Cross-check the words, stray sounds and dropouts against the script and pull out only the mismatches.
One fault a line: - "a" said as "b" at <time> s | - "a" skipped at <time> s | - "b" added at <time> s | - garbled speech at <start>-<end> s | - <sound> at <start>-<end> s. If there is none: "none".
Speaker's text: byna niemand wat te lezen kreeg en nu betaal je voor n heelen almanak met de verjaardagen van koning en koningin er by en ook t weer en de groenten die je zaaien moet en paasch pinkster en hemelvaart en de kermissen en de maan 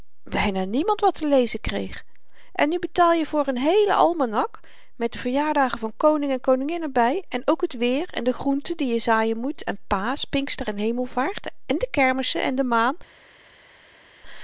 none